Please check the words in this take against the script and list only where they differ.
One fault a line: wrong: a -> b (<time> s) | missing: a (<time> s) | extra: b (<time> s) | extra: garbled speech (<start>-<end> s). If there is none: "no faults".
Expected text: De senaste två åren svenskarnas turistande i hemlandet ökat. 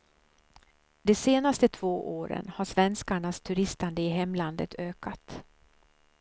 extra: har (2.5 s)